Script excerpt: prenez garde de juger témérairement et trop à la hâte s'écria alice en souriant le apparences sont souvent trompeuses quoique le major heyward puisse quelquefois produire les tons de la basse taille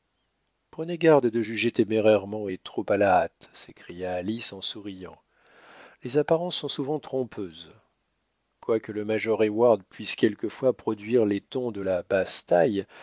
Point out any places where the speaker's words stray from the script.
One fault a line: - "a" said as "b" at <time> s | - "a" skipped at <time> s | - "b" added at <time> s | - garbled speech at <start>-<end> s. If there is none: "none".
- "le" said as "les" at 6.0 s